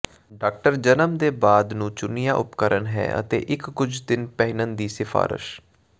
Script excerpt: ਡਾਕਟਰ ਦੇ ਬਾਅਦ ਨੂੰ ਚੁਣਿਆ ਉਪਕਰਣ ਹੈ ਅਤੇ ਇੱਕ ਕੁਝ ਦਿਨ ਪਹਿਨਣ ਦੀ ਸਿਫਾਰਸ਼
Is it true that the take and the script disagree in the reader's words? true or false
true